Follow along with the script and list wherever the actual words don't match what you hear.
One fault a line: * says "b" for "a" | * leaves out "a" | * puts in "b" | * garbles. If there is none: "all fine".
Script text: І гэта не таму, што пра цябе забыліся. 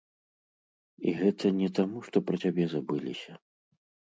all fine